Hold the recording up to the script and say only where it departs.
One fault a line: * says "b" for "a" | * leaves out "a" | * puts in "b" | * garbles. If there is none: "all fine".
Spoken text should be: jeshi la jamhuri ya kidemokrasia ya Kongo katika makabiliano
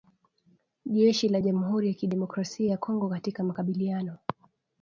all fine